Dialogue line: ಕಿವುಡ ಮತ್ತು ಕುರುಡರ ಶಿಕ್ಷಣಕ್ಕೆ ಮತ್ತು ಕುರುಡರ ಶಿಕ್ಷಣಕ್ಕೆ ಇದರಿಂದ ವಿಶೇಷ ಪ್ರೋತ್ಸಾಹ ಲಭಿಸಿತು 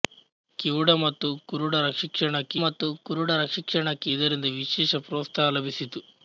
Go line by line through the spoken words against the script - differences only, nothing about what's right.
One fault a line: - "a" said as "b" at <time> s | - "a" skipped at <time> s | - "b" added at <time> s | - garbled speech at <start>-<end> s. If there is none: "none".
none